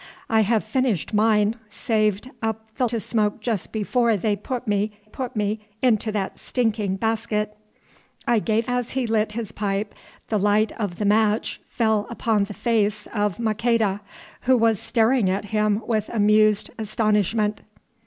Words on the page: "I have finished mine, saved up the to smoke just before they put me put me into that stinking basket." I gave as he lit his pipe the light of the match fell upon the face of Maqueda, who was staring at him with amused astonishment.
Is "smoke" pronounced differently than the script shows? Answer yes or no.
no